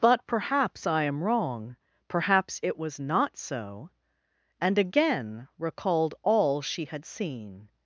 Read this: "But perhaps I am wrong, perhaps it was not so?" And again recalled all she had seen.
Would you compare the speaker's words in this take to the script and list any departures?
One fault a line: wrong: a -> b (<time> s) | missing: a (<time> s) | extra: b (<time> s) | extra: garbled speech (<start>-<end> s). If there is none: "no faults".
no faults